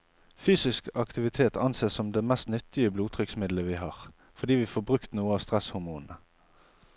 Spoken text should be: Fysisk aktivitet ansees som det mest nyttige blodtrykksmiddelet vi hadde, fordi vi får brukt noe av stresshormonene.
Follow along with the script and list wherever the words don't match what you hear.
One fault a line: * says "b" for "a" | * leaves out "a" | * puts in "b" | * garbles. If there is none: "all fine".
* says "har" for "hadde"